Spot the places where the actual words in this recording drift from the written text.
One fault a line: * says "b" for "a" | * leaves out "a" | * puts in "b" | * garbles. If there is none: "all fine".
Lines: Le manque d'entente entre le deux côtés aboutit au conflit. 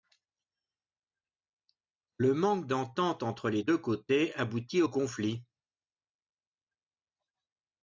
* says "les" for "le"